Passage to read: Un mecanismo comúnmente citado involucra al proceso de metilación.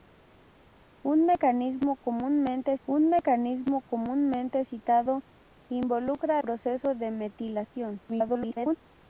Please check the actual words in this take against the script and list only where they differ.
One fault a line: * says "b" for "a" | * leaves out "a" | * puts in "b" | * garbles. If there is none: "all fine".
* puts in "un mecanismo comúnmente"
* leaves out "al"
* garbles